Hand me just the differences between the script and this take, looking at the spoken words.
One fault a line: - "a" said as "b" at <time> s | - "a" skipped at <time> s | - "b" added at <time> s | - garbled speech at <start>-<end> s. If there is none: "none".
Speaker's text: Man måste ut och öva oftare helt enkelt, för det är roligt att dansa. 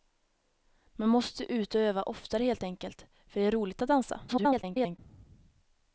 - garbled speech at 4.3-5.0 s